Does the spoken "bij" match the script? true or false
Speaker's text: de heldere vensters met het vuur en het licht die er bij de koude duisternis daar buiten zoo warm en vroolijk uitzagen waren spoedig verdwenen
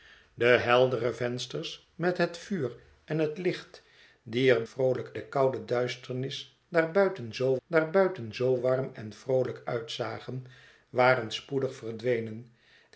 false